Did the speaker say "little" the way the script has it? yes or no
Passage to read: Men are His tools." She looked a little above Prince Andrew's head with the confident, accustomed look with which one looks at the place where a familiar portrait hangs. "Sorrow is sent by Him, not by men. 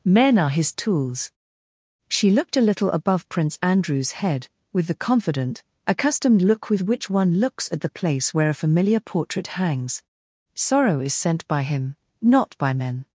yes